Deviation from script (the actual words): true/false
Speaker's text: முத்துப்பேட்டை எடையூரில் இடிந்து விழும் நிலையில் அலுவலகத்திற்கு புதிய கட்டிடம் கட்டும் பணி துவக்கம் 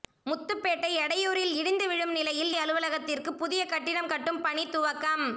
false